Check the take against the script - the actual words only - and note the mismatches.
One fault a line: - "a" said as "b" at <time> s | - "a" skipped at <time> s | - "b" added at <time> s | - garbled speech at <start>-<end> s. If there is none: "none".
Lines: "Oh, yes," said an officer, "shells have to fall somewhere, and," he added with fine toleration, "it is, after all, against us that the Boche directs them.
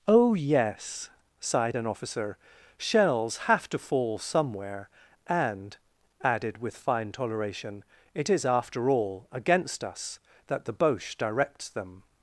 - "said" said as "sighed" at 1.4 s
- "he" skipped at 5.8 s